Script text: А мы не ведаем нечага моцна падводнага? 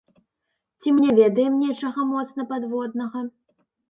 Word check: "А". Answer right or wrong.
wrong